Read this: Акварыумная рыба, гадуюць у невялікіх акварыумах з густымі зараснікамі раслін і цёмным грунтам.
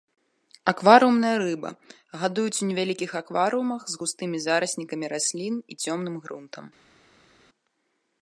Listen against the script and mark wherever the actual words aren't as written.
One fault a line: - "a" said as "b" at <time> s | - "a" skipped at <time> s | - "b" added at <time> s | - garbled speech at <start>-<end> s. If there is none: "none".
none